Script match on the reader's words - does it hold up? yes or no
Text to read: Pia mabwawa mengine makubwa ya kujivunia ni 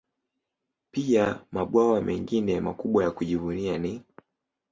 yes